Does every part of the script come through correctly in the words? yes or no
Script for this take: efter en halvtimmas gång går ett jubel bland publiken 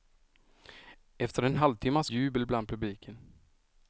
no